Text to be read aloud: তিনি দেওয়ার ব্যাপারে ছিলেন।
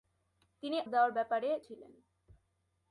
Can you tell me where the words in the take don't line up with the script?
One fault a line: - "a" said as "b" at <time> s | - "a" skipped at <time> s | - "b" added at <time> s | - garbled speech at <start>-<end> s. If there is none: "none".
none